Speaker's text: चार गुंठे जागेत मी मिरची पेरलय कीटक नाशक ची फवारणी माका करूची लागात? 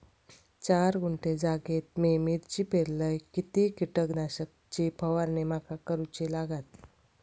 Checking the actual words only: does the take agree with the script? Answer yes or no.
no